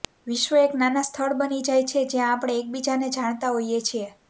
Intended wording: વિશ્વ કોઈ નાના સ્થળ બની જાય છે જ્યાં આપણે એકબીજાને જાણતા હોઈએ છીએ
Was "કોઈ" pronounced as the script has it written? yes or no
no